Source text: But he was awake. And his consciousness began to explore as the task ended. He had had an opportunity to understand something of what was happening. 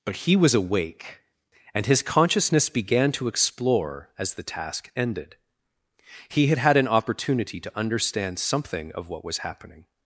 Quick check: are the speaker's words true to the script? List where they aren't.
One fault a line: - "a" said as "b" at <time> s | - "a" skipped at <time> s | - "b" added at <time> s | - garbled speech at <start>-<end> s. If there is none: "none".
none